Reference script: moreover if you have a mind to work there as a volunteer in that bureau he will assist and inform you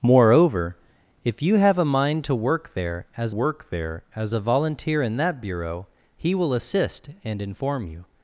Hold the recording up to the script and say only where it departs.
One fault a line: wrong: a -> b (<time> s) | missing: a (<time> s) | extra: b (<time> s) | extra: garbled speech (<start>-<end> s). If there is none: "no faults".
extra: work there as (3.3 s)